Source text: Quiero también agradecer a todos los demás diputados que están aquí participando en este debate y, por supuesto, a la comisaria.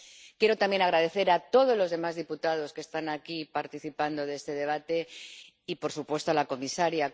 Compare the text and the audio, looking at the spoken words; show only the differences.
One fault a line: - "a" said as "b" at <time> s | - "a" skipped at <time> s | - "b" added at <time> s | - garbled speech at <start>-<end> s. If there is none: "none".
none